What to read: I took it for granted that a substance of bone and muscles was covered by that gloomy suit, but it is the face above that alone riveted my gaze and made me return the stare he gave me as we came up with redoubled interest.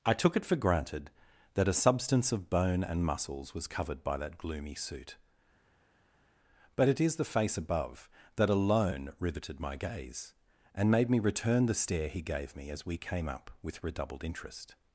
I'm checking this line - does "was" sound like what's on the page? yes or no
yes